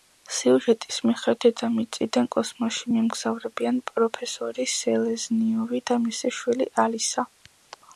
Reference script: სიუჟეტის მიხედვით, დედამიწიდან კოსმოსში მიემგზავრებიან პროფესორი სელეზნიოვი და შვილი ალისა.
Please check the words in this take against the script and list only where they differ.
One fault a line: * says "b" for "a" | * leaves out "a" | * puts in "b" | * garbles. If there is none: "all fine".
* puts in "მისი"